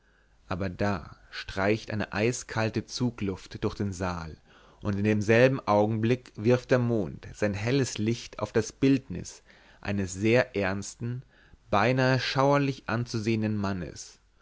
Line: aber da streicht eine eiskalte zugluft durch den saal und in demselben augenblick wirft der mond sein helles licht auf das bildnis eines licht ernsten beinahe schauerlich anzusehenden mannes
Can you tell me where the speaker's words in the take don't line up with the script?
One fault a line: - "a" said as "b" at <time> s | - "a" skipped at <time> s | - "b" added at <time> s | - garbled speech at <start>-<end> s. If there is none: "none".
- "licht" said as "sehr" at 10.1 s